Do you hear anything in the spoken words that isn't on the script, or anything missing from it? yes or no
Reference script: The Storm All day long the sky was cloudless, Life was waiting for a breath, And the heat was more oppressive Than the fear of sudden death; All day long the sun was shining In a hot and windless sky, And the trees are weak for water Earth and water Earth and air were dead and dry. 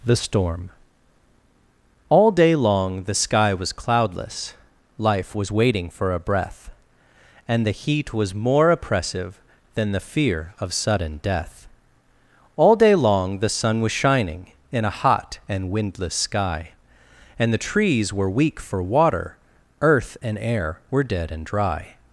yes